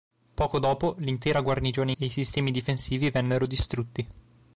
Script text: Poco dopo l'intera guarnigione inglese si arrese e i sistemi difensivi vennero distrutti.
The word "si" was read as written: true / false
false